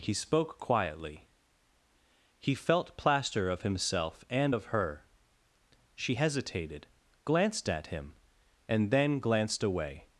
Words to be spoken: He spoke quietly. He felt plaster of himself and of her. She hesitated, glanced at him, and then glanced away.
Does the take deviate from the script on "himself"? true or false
false